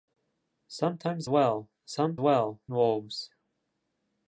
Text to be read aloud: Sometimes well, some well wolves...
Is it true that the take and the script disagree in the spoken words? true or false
false